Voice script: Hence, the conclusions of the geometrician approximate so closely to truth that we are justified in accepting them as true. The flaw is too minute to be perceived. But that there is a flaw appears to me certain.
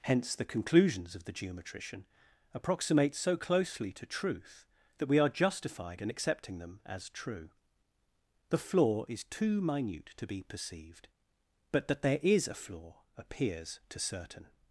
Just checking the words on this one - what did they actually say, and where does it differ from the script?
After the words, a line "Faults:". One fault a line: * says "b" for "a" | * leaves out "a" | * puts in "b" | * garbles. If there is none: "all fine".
Hence, the conclusions of the geometrician approximate so closely to truth that we are justified in accepting them as true. The flaw is too minute to be perceived. But that there is a flaw appears to certain.
Faults:
* leaves out "me"